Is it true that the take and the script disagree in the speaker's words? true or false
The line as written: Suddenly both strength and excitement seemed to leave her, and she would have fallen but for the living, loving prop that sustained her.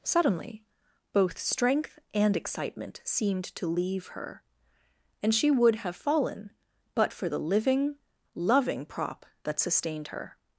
false